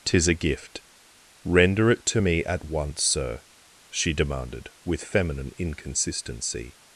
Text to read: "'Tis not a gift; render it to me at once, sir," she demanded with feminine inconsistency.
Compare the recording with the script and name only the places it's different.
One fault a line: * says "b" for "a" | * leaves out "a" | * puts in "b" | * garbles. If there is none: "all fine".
* leaves out "not"